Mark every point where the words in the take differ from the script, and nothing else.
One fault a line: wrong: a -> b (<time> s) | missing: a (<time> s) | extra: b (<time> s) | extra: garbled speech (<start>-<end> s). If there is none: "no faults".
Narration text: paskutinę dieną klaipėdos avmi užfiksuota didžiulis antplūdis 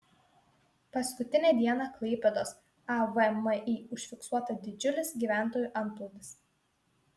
extra: gyventojų (5.2 s)